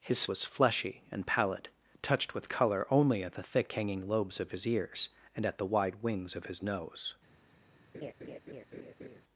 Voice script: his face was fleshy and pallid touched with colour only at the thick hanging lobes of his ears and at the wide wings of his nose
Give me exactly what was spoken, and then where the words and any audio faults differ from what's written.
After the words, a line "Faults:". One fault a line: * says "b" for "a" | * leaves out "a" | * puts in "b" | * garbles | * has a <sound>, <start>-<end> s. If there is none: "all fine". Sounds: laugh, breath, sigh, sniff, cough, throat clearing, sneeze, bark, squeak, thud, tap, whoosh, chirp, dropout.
his was fleshy and pallid touched with colour only at the thick hanging lobes of his ears and at the wide wings of his nose
Faults:
* leaves out "face"
* has a laugh, 7.9-9.2 s